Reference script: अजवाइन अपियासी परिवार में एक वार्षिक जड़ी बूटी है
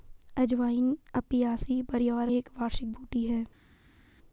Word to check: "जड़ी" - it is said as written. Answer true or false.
false